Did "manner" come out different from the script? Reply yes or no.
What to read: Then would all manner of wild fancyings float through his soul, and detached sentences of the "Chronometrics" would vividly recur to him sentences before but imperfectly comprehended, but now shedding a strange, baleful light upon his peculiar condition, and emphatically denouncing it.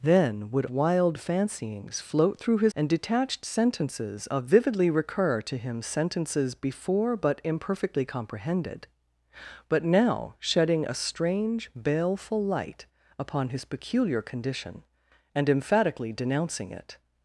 yes